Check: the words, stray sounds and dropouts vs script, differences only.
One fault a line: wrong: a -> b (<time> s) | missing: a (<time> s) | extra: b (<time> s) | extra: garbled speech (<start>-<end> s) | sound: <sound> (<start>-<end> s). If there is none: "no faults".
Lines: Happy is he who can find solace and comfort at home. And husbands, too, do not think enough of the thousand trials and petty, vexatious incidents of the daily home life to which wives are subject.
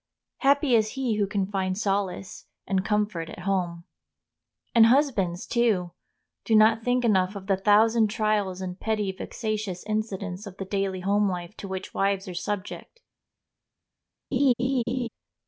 sound: laugh (14.3-15.1 s)